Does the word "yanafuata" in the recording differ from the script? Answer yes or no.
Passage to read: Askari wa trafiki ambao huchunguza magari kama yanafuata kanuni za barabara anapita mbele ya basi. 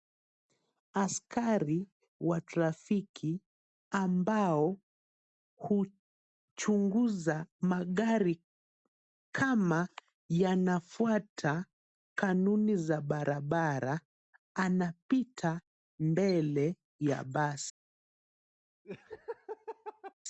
no